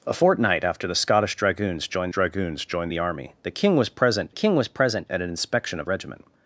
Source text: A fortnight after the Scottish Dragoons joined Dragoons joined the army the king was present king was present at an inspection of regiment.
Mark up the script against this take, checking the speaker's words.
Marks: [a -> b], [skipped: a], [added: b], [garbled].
A fortnight after the Scottish Dragoons joined Dragoons joined the army the king was present king was present at an inspection of regiment.